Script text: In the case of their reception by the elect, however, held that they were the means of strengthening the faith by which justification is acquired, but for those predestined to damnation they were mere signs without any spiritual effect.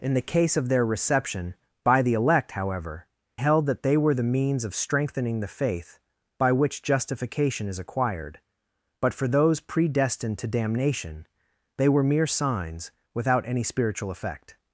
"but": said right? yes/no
yes